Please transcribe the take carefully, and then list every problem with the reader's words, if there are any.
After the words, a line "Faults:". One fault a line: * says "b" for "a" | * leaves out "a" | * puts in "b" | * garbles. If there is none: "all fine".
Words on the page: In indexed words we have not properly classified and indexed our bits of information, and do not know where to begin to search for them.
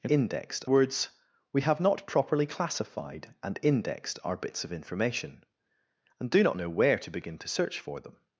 In indexed words we have not properly classified and indexed our bits of information, and do not know where to begin to search for them.
Faults:
all fine